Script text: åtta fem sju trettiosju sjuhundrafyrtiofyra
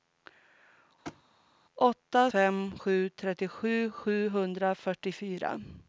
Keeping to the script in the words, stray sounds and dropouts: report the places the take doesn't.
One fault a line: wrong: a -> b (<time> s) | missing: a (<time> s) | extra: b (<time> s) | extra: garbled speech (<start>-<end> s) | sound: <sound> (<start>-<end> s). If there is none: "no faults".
sound: thud (1.1-1.2 s)